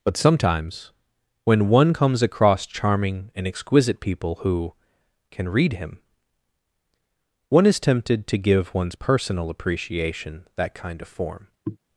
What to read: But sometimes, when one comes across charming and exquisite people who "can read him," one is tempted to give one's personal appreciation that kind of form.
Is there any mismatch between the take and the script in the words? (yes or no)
no